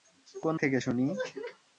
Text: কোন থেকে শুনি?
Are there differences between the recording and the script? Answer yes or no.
no